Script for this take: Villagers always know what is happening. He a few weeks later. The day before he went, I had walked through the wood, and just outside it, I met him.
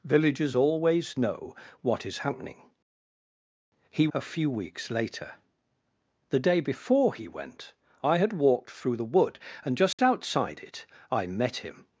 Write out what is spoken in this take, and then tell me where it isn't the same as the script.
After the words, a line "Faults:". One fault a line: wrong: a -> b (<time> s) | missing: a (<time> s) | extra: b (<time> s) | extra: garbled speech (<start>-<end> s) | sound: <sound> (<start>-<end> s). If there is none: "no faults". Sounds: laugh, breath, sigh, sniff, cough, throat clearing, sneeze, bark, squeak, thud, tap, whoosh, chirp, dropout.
Villagers always know what is happening. He a few weeks later. The day before he went, I had walked through the wood, and just outside it, I met him.
Faults:
sound: dropout (9.9-10.0 s)